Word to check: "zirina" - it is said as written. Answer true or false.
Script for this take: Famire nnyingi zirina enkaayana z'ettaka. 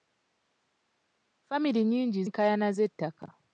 false